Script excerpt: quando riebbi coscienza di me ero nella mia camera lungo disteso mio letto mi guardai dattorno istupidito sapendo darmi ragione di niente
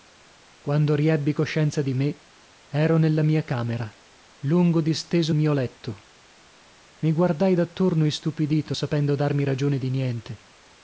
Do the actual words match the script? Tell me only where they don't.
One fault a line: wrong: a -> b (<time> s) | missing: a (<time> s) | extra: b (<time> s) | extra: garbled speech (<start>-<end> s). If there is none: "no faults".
no faults